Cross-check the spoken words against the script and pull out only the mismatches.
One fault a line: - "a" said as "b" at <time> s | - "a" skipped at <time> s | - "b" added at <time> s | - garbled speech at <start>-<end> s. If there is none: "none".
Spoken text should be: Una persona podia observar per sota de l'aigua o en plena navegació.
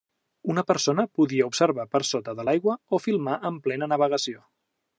- "filmar" added at 3.1 s